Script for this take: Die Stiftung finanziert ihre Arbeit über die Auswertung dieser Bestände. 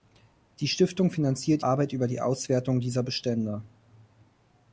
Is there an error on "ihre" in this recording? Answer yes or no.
yes